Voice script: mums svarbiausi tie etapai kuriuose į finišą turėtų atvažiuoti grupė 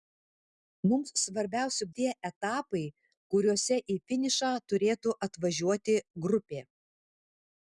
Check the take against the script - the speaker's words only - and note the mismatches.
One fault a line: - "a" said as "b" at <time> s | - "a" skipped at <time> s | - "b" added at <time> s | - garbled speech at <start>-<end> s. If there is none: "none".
none